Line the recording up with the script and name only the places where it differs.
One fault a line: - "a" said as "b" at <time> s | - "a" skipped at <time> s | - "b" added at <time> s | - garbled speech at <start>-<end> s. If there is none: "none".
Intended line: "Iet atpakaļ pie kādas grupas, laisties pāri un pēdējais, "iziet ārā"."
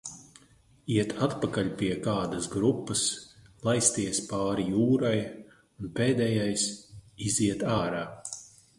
- "jūrai" added at 4.7 s